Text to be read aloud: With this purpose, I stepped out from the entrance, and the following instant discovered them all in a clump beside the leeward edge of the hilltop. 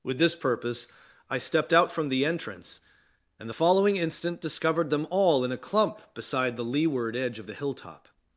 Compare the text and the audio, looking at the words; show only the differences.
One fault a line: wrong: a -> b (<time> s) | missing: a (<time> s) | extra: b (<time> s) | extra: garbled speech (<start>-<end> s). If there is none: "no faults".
no faults